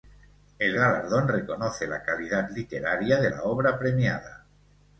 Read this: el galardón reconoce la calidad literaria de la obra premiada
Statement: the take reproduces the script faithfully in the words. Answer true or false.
true